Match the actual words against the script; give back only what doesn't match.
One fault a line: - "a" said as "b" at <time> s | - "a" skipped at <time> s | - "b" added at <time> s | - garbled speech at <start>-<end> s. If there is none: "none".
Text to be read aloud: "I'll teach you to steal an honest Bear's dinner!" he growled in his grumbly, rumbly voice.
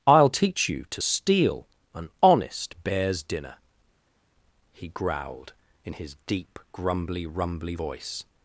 - "deep" added at 6.3 s